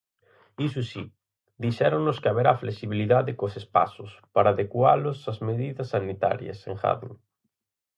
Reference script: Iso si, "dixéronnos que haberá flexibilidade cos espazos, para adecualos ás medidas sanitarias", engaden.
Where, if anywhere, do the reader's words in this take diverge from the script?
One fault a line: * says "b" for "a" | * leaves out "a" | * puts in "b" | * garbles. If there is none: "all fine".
all fine